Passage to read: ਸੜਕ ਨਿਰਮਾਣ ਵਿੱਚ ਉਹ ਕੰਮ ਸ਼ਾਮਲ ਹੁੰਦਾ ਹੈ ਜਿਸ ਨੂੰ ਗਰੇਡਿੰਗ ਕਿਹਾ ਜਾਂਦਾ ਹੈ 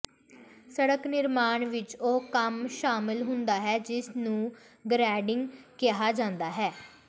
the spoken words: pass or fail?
pass